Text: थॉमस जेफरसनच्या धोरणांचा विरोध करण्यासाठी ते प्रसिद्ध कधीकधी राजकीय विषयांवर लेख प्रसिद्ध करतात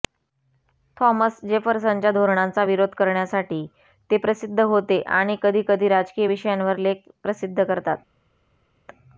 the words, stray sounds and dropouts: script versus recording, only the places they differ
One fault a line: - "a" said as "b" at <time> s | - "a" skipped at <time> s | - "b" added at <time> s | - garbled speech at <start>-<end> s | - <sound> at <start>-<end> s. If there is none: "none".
- "होते आणि" added at 4.6 s